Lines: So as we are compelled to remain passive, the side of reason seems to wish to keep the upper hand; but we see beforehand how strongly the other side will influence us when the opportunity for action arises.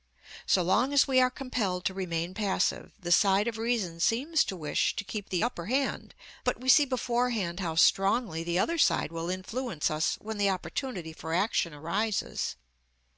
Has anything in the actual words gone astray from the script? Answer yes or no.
yes